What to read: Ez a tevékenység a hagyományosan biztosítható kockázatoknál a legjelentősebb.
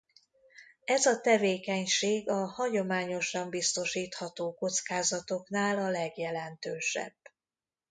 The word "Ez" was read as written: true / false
true